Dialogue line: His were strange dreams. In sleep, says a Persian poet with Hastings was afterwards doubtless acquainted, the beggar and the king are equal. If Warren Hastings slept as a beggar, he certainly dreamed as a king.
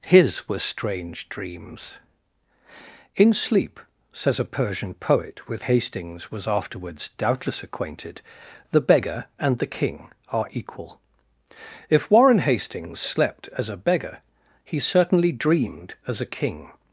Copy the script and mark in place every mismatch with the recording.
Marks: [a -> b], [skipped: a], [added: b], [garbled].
His were strange dreams. In sleep, says a Persian poet with Hastings was afterwards doubtless acquainted, the beggar and the king are equal. If Warren Hastings slept as a beggar, he certainly dreamed as a king.